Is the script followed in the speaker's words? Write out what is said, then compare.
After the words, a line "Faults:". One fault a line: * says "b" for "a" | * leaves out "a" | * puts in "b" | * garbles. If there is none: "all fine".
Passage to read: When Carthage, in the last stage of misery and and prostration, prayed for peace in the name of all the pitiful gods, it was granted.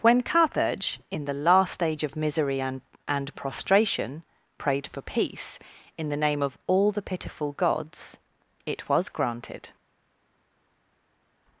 When Carthage, in the last stage of misery and and prostration, prayed for peace in the name of all the pitiful gods, it was granted.
Faults:
all fine